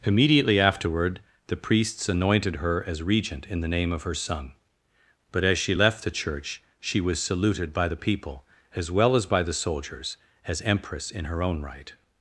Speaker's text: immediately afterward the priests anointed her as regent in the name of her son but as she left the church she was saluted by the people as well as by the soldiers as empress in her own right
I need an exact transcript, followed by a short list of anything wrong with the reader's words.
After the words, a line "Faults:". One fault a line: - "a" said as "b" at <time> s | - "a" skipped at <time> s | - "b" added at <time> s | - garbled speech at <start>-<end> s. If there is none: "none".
immediately afterward the priests anointed her as regent in the name of her son but as she left the church she was saluted by the people as well as by the soldiers as empress in her own right
Faults:
none